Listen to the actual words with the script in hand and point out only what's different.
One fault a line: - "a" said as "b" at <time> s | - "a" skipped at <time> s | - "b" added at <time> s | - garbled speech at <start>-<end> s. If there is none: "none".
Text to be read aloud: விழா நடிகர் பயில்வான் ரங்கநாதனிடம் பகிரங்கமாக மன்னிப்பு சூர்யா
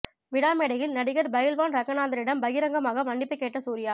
- "மேடையில்" added at 0.5 s
- "கேட்ட" added at 3.4 s